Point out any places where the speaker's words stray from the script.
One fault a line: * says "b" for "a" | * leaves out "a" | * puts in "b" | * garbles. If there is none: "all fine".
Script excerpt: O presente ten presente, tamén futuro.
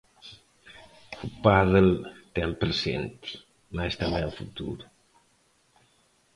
* says "pádel" for "presente"
* puts in "mais"